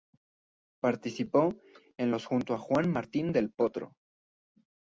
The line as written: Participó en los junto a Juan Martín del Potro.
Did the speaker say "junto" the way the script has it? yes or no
yes